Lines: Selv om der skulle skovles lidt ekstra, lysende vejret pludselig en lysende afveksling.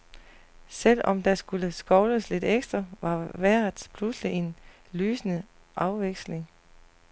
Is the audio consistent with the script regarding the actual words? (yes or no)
no